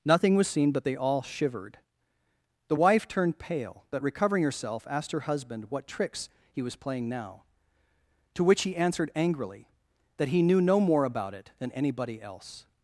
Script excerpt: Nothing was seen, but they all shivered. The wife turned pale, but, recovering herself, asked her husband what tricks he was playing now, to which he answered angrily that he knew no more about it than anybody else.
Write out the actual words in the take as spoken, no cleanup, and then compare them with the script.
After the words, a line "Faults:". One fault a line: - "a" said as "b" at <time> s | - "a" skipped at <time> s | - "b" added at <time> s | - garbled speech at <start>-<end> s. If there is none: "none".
Nothing was seen, but they all shivered. The wife turned pale, but, recovering herself, asked her husband what tricks he was playing now, to which he answered angrily that he knew no more about it than anybody else.
Faults:
none